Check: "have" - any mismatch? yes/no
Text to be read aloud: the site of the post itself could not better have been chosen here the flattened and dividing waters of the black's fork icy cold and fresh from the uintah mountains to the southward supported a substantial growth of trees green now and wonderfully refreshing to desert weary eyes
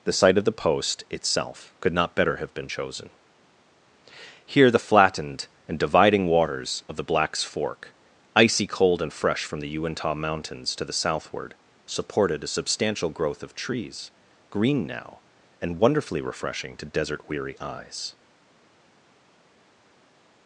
no